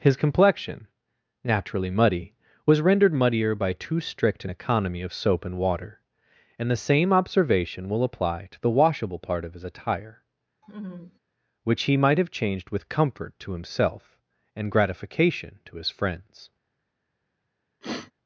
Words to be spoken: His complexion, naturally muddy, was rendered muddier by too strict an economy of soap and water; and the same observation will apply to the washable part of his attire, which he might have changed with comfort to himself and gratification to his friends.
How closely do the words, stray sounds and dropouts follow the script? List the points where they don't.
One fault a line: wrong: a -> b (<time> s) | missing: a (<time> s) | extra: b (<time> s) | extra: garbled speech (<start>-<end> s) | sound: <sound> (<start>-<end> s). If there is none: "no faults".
sound: laugh (10.6-11.2 s)
sound: sniff (17.8-18.1 s)